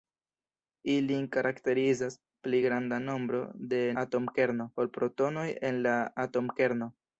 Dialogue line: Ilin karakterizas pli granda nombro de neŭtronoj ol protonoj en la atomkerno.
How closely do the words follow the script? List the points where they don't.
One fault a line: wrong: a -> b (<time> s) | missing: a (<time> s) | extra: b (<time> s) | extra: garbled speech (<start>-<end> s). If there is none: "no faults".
wrong: neŭtronoj -> atomkerno (4.0 s)